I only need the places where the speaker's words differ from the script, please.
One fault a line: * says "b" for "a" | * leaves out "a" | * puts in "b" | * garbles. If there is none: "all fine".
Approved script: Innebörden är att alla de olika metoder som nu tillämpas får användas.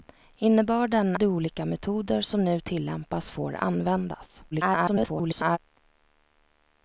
* leaves out "är att alla"
* garbles